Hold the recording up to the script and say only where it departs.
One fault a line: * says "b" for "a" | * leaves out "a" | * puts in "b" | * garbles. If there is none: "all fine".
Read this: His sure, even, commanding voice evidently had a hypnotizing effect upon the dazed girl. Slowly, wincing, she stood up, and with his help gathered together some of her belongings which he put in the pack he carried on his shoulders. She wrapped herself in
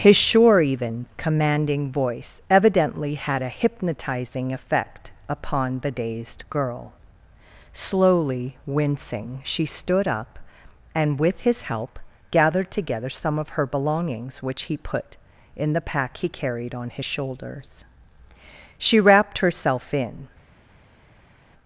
all fine